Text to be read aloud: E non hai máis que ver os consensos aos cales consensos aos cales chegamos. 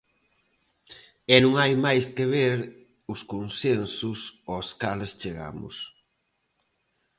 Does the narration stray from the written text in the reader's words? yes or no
yes